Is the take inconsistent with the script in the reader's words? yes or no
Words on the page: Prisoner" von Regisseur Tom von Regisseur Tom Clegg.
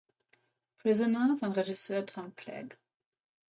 yes